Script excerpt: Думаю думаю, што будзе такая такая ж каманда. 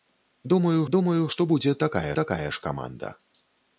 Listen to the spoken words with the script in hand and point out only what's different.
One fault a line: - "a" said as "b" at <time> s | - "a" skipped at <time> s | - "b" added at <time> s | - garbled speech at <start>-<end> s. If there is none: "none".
none